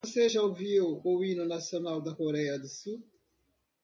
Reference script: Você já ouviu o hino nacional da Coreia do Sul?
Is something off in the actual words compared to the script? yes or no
no